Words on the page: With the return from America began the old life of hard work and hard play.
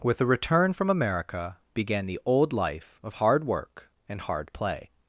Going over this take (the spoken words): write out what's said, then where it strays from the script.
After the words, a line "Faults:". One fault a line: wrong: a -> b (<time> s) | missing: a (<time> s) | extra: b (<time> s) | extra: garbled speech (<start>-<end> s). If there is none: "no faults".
With the return from America began the old life of hard work and hard play.
Faults:
no faults